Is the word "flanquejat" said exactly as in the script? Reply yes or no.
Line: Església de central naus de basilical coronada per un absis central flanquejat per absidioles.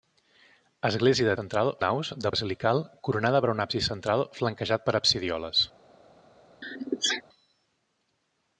yes